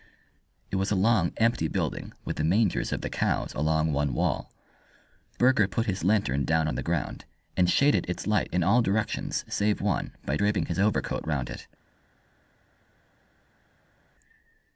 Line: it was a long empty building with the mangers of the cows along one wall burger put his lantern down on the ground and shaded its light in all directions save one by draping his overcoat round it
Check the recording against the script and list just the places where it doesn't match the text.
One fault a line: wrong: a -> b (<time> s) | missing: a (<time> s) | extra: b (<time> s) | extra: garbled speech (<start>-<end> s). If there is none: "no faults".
no faults